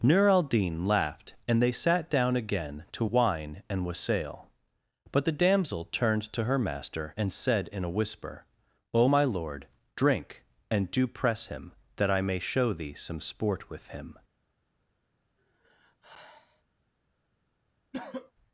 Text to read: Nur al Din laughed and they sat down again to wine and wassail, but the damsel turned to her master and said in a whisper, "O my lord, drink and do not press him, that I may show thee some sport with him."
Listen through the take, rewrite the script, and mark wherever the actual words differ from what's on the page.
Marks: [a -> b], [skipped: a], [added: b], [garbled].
Nur al Din laughed and they sat down again to wine and wassail, but the damsel turned to her master and said in a whisper, "O my lord, drink and do [skipped: not] press him, that I may show thee some sport with him."